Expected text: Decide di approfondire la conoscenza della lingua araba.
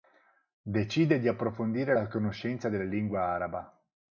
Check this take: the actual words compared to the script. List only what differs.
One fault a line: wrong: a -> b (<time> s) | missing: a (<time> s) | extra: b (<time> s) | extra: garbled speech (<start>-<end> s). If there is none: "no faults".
no faults